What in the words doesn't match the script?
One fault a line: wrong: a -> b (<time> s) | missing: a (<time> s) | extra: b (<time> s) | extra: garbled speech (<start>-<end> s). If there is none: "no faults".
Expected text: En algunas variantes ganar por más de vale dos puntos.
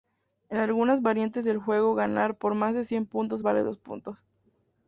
extra: del juego (1.4 s)
extra: cien puntos (2.9 s)